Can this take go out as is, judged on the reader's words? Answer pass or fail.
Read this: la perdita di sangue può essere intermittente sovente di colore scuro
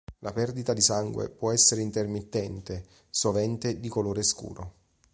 pass